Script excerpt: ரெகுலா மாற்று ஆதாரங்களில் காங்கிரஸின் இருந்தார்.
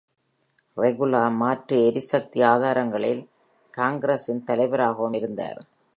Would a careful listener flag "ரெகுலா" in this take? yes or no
no